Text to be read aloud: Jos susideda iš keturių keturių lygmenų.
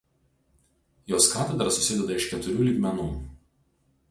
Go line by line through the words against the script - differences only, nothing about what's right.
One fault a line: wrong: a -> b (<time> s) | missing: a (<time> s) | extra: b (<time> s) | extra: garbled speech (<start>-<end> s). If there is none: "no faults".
extra: katedra (1.3 s)
missing: keturių (2.7 s)